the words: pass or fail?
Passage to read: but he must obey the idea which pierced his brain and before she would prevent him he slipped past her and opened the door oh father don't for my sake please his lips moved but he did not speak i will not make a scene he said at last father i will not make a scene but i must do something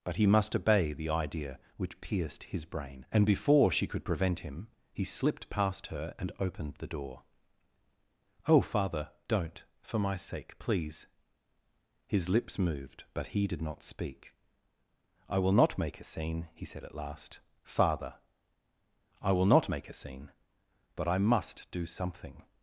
fail